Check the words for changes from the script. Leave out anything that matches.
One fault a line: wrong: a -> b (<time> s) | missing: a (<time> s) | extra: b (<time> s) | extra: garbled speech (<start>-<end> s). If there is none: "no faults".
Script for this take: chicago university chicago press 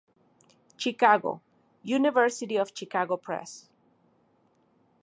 extra: of (2.6 s)